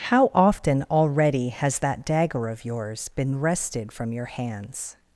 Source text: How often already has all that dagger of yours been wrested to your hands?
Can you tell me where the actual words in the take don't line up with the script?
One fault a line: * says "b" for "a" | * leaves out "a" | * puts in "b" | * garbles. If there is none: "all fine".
* leaves out "all"
* says "from" for "to"